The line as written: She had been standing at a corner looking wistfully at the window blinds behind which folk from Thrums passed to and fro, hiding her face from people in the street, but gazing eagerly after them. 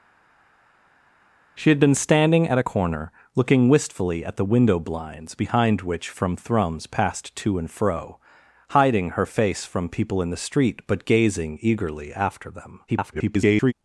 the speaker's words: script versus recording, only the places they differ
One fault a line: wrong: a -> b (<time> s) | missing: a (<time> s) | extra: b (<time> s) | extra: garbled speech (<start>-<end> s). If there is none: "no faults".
missing: folk (6.1 s)
extra: garbled speech (12.9-13.7 s)